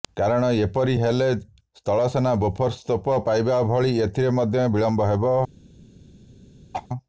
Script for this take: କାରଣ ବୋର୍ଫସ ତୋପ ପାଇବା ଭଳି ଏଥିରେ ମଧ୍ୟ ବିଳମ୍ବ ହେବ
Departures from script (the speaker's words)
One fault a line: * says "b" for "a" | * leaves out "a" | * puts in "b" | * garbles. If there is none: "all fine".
* puts in "ଏପରି ହେଲେ ସ୍ଥଳସେନା"